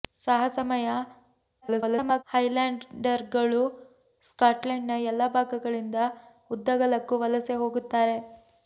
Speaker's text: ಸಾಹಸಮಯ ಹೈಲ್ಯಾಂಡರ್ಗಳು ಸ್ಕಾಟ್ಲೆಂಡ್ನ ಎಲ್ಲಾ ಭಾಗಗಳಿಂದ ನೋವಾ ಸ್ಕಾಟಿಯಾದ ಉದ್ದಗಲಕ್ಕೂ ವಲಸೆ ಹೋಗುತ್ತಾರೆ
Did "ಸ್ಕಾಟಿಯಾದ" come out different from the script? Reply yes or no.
yes